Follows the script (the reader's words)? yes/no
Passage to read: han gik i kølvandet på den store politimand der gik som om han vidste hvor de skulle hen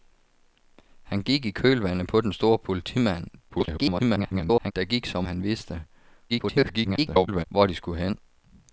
no